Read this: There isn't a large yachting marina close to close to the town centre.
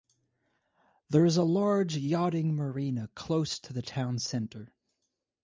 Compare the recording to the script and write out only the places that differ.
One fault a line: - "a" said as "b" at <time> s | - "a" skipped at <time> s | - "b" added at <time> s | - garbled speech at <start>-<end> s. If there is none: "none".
- "isn't" said as "is" at 1.2 s
- "close to" skipped at 3.7 s